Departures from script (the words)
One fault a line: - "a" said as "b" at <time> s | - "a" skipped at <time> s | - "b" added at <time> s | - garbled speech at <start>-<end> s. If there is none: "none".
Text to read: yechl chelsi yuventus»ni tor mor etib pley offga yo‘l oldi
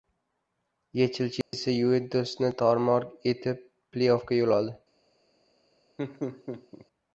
none